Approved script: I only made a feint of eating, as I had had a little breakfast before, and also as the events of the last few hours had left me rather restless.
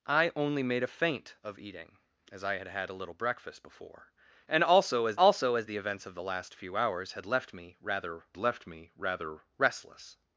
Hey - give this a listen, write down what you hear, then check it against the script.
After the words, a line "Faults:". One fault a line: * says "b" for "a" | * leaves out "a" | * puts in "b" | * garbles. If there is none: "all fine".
I only made a feint of eating, as I had had a little breakfast before, and also as also as the events of the last few hours had left me rather left me rather restless.
Faults:
* puts in "also as"
* puts in "left me rather"